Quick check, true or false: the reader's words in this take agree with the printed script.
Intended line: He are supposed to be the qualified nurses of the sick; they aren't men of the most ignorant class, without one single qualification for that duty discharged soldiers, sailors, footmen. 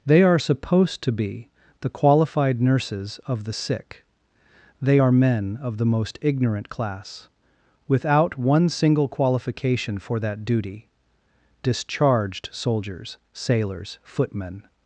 false